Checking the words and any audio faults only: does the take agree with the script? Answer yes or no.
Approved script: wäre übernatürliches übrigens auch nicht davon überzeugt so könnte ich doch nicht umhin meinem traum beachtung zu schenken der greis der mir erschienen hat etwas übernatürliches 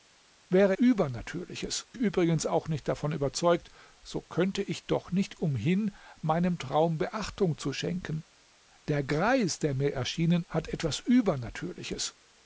yes